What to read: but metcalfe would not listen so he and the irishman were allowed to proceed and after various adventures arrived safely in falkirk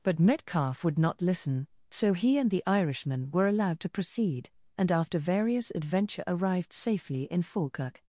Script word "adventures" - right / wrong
wrong